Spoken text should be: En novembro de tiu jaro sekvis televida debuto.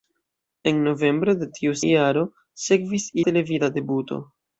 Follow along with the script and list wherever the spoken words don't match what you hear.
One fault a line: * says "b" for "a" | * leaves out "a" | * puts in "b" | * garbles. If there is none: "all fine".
all fine